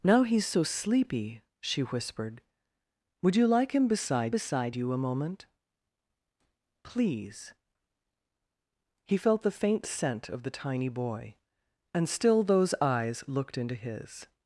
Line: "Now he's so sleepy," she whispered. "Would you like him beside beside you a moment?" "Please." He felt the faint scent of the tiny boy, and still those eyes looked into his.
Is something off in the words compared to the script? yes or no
no